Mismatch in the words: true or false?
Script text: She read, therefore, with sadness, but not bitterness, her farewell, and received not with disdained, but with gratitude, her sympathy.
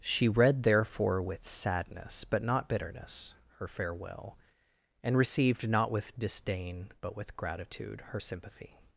true